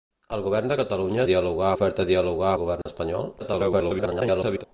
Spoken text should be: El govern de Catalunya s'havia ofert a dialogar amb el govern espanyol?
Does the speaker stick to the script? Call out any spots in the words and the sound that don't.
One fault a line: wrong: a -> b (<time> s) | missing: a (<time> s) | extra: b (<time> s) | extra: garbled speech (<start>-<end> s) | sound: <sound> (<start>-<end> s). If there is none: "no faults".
wrong: s'havia -> dialogar (1.3 s)
missing: amb (2.5 s)
sound: dropout (2.8-2.9 s)
extra: garbled speech (3.4-4.6 s)